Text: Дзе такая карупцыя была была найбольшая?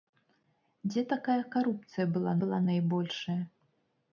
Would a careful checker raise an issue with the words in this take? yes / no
no